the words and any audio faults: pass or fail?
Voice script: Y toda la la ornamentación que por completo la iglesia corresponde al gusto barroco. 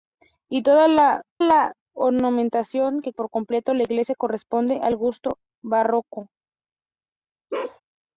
fail